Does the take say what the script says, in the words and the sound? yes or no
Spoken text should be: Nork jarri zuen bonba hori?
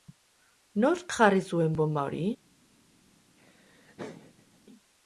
no